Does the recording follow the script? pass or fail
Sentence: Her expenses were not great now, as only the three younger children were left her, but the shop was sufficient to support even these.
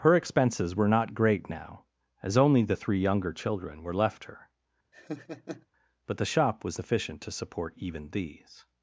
pass